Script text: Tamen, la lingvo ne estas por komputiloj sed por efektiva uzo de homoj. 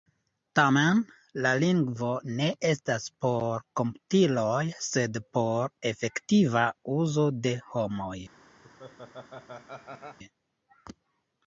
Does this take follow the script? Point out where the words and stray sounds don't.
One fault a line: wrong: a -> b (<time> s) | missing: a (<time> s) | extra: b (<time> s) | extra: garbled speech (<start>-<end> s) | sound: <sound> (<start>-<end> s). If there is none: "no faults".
sound: laugh (8.6-10.2 s)